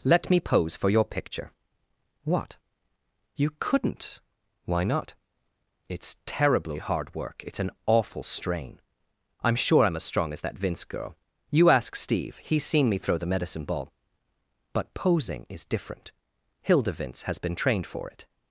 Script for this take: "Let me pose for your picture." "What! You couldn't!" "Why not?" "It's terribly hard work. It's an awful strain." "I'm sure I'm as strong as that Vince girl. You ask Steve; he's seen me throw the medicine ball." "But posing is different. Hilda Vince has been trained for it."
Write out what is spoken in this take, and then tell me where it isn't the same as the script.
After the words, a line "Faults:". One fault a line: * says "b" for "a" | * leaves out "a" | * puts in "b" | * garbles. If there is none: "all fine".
"Let me pose for your picture." "What! You couldn't!" "Why not?" "It's terribly hard work. It's an awful strain." "I'm sure I'm as strong as that Vince girl. You ask Steve; he's seen me throw the medicine ball." "But posing is different. Hilda Vince has been trained for it."
Faults:
all fine